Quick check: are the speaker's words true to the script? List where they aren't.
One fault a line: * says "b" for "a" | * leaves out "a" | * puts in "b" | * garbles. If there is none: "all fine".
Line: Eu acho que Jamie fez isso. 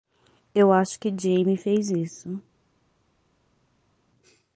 all fine